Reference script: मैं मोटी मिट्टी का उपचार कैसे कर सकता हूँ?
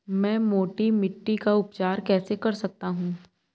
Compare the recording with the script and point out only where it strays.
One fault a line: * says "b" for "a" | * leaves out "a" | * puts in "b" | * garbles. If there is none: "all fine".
all fine